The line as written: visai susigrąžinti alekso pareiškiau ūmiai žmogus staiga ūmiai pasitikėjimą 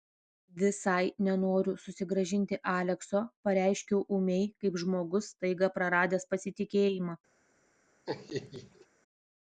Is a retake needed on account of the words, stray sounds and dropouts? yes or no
yes